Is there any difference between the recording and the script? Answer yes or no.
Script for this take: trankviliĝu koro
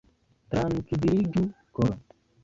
no